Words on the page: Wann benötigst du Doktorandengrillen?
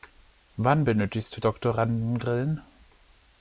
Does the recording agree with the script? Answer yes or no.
yes